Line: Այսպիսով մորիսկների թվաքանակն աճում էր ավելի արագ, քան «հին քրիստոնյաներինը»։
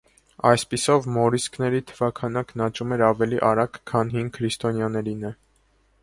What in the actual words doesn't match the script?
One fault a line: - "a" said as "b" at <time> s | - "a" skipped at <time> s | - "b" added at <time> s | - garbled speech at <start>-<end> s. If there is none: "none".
none